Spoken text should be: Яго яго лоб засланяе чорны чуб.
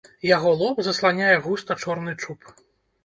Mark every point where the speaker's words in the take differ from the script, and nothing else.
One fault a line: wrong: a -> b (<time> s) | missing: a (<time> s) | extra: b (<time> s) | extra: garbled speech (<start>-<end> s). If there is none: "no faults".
missing: яго (0.5 s)
extra: густа (1.4 s)